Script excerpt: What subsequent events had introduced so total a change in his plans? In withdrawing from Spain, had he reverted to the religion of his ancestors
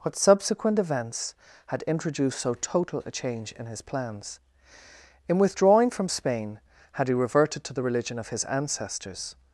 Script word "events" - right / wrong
right